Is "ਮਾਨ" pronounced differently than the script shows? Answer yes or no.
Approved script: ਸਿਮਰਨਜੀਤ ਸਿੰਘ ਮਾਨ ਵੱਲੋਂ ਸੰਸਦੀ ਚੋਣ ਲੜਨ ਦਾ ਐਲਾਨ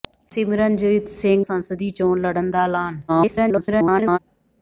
yes